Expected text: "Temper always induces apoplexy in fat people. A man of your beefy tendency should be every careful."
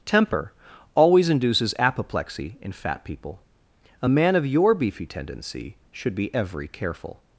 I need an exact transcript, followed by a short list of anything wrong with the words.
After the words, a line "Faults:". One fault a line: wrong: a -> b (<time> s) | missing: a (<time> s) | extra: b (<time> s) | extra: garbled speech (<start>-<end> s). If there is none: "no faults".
"Temper always induces apoplexy in fat people. A man of your beefy tendency should be every careful."
Faults:
no faults